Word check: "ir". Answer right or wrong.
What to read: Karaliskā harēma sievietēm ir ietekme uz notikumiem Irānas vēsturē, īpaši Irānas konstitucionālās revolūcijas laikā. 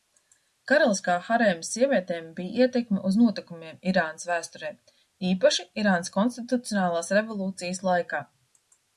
wrong